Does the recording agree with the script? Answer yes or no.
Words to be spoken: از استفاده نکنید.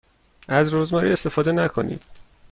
no